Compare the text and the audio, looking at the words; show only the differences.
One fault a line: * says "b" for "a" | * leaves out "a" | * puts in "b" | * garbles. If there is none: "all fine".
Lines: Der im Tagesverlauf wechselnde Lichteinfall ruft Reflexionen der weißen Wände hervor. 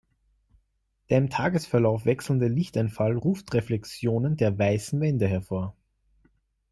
all fine